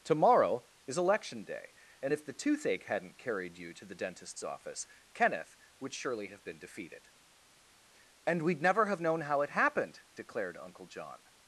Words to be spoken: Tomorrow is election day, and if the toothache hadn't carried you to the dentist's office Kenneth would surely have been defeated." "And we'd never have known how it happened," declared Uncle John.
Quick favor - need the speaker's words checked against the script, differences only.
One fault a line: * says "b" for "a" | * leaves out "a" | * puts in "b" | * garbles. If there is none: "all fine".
all fine